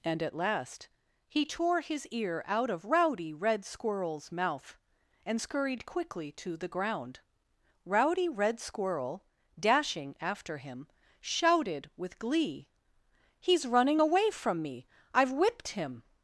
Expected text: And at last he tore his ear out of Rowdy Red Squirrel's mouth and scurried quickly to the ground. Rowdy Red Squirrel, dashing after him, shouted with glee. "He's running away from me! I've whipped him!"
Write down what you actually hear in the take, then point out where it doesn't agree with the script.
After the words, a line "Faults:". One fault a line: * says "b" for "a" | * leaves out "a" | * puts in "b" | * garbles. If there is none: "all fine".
And at last he tore his ear out of Rowdy Red Squirrel's mouth and scurried quickly to the ground. Rowdy Red Squirrel, dashing after him, shouted with glee. "He's running away from me! I've whipped him!"
Faults:
all fine